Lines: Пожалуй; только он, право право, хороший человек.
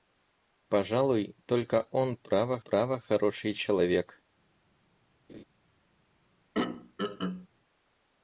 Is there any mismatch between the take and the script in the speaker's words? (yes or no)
no